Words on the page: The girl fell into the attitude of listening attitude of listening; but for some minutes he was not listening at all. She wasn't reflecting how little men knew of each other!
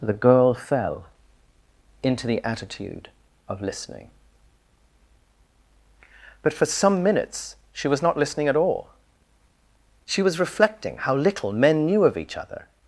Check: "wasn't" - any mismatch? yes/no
yes